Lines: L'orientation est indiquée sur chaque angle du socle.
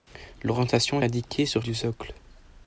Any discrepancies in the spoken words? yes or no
yes